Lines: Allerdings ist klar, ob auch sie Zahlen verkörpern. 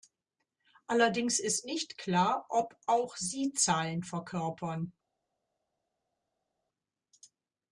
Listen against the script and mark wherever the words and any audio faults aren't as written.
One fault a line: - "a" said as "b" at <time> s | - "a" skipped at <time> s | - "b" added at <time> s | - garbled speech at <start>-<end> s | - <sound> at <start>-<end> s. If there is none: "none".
- "nicht" added at 1.6 s